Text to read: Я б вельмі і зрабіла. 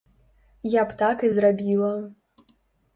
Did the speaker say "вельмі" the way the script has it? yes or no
no